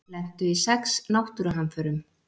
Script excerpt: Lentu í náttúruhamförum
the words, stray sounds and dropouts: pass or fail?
fail